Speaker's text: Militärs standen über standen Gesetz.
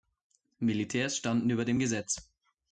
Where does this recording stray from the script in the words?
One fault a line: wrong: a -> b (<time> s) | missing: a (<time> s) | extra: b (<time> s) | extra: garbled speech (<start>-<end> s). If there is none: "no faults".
wrong: standen -> dem (1.6 s)